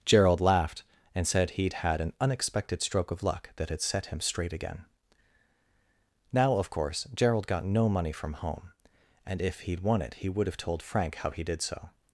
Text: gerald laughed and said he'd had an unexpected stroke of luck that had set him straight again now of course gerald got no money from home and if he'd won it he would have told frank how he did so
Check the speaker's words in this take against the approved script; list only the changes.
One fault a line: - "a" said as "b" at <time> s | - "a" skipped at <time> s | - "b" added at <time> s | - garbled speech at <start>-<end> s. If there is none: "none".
none